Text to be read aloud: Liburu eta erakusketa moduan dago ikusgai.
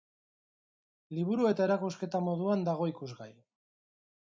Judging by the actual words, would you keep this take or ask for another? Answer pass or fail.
pass